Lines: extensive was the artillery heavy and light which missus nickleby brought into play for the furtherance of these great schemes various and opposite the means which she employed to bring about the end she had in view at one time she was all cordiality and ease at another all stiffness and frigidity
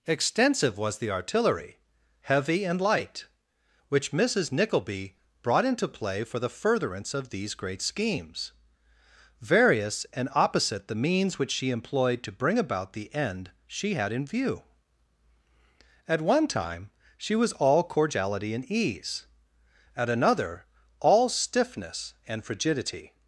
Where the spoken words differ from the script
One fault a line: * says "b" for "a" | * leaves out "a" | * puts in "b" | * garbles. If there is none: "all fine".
all fine